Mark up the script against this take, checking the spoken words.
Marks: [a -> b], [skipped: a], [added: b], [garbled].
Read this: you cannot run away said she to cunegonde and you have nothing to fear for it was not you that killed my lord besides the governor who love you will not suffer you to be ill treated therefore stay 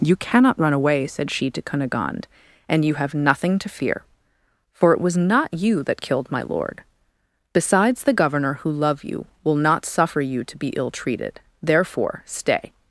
you cannot run away said she to cunegonde and you have nothing to fear for it was not you that killed my lord besides the governor who love you will not suffer you to be ill treated therefore stay